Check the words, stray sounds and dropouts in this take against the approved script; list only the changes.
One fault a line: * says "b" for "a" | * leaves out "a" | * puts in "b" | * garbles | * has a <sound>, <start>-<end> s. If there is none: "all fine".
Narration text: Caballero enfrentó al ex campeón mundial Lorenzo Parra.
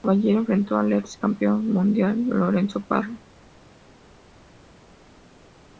all fine